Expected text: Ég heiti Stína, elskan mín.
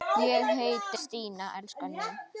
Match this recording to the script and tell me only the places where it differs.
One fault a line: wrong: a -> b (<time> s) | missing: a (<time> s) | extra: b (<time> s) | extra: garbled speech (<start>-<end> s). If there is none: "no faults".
no faults